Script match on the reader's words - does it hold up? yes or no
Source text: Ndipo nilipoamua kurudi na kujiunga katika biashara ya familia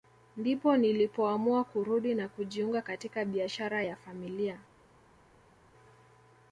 yes